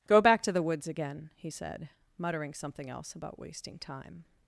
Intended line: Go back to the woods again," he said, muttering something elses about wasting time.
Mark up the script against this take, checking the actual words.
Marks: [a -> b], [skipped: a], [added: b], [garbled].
Go back to the woods again," he said, muttering something [elses -> else] about wasting time.